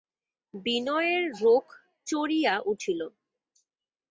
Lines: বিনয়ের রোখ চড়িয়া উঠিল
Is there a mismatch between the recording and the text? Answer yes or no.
no